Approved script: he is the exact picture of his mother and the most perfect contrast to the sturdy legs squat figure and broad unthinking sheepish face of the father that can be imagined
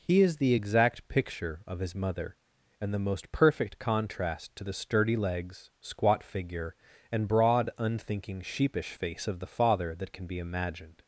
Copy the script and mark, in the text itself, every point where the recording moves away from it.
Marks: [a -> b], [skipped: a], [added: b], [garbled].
he is the exact picture of his mother and the most perfect contrast to the sturdy legs squat figure and broad unthinking sheepish face of the father that can be imagined